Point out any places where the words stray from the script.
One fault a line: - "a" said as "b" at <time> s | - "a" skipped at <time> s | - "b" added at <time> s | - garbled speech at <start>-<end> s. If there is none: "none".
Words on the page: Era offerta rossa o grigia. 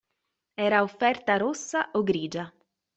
none